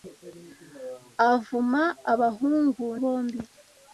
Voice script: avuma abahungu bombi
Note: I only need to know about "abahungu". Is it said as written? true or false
true